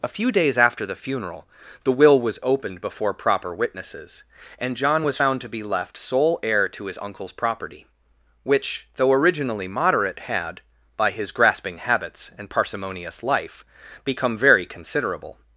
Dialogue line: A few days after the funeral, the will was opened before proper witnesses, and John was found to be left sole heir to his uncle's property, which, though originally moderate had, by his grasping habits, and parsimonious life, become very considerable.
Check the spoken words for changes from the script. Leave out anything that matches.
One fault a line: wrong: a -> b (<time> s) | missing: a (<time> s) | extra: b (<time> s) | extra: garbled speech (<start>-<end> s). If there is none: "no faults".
no faults